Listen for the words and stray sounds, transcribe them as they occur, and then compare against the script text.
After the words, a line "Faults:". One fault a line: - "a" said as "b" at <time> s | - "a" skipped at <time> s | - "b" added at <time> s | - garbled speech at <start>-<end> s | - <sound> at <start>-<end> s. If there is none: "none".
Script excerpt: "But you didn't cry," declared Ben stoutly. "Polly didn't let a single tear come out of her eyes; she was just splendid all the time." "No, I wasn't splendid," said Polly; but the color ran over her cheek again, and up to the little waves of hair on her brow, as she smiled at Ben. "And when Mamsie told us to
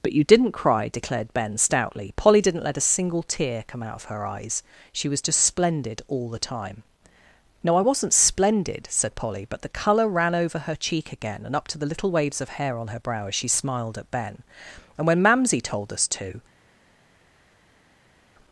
"But you didn't cry," declared Ben stoutly. "Polly didn't let a single tear come out of her eyes; she was just splendid all the time." "No, I wasn't splendid," said Polly; but the color ran over her cheek again, and up to the little waves of hair on her brow, as she smiled at Ben. "And when Mamsie told us to
Faults:
none